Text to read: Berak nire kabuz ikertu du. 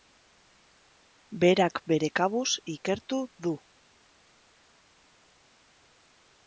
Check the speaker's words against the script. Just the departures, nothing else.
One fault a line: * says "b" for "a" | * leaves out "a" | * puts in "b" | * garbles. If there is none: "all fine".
* says "bere" for "nire"